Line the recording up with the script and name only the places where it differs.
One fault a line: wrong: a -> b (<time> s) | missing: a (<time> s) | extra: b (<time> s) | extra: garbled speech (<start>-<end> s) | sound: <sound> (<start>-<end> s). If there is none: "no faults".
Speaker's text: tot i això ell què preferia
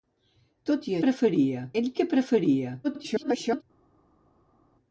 wrong: això -> preferia (1.1 s)
extra: garbled speech (2.8-3.6 s)